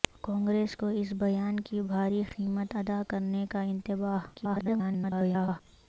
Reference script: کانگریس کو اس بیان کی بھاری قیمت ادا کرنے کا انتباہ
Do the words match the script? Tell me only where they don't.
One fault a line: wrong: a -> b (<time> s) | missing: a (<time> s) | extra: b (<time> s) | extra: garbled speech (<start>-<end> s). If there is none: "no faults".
extra: garbled speech (4.3-5.6 s)